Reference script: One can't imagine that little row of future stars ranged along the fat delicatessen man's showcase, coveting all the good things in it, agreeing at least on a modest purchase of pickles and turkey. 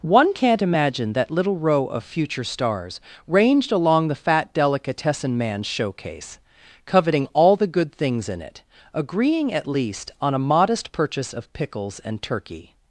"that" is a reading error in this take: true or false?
false